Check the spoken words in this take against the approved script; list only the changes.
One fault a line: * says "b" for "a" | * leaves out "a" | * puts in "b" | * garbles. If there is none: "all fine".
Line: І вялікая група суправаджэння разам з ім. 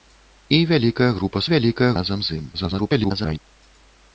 * says "вялікая" for "суправаджэння"
* garbles